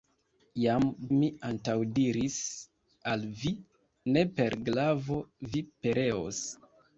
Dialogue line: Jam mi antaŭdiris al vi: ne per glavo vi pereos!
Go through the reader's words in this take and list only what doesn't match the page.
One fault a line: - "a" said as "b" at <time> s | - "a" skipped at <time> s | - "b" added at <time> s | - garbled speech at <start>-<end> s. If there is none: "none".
none